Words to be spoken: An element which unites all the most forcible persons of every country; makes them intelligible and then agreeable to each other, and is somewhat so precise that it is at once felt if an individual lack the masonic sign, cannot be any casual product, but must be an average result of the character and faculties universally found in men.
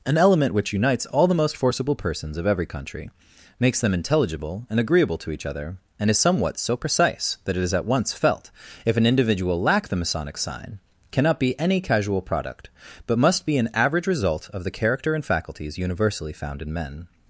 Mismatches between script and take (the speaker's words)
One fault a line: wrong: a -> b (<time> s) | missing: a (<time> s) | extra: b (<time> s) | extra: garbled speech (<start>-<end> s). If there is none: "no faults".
missing: then (4.8 s)